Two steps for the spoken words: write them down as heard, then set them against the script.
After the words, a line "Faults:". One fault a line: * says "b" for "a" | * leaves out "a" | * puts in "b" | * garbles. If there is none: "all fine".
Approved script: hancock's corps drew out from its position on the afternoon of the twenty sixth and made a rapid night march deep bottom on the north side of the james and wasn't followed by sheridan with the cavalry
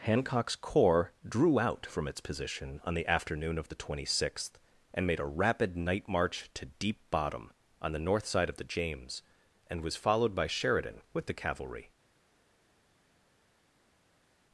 hancock's corps drew out from its position on the afternoon of the twenty sixth and made a rapid night march to deep bottom on the north side of the james and was followed by sheridan with the cavalry
Faults:
* puts in "to"
* says "was" for "wasn't"